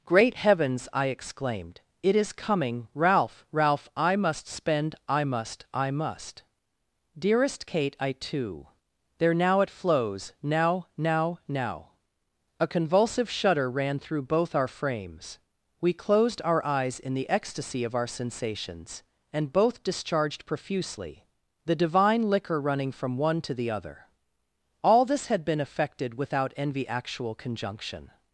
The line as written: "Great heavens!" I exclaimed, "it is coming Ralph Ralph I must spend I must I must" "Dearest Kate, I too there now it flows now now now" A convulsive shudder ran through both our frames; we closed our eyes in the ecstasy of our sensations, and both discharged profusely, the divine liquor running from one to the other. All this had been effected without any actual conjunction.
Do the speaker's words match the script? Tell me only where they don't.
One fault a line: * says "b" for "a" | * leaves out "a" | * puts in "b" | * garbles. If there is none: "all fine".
* says "envy" for "any"